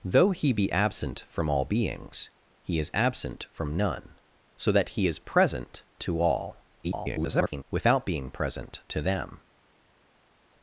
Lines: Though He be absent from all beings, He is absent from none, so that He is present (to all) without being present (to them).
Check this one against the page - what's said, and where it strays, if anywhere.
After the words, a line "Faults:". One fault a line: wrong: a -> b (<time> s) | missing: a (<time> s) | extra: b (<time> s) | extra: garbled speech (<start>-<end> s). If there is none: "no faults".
Though He be absent from all beings, He is absent from none, so that He is present (to all) [garbled] without being present (to them).
Faults:
extra: garbled speech (6.8-7.6 s)